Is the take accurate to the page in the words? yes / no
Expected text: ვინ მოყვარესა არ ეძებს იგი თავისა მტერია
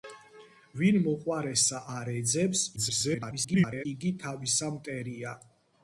no